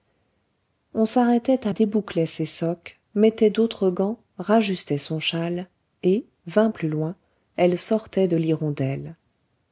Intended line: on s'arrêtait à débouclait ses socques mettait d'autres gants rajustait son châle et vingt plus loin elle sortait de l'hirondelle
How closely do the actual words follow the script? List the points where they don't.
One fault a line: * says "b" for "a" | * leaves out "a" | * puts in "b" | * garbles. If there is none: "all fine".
all fine